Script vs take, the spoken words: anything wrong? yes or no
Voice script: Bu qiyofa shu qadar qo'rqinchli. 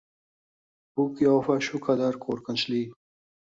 no